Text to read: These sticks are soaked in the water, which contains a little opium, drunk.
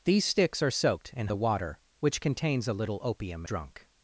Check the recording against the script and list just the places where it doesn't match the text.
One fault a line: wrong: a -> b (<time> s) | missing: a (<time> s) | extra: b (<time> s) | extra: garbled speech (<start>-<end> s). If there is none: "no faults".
no faults